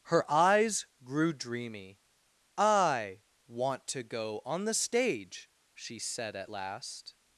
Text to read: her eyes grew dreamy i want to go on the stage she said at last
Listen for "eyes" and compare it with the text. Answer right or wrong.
right